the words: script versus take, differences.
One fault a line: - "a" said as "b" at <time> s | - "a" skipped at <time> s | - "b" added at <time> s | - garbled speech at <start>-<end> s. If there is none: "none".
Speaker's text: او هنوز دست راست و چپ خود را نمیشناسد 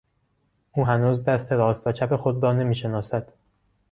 none